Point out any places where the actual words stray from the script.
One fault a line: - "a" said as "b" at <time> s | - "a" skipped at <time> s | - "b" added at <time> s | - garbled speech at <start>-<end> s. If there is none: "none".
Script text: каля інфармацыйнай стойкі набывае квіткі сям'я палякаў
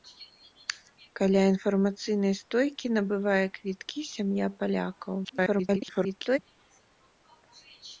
- garbled speech at 5.2-6.4 s